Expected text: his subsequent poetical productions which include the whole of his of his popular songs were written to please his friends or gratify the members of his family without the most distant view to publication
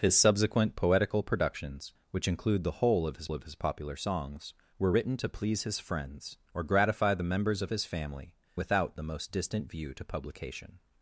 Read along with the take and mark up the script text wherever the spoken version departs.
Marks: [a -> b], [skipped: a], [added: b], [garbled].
his subsequent poetical productions which include the whole of his of his popular songs were written to please his friends or gratify the members of his family without the most distant view to publication